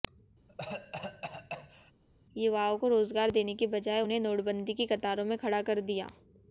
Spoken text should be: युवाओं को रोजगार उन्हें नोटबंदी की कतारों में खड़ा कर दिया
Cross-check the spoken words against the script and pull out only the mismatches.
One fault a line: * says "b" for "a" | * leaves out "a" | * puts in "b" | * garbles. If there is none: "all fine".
* puts in "देने की बजाय"